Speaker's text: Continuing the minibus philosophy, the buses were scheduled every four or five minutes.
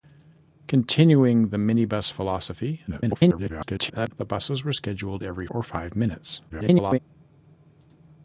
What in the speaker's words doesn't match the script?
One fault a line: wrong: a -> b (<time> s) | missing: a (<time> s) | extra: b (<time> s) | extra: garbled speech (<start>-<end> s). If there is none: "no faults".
extra: garbled speech (2.9-4.1 s)
missing: four (5.5 s)
extra: garbled speech (6.5-7.0 s)